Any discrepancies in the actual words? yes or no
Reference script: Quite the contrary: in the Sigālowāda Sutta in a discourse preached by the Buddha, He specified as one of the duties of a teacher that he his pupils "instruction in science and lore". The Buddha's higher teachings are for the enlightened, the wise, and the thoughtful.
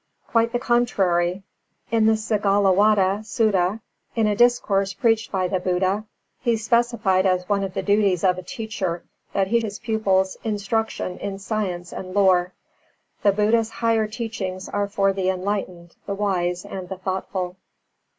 no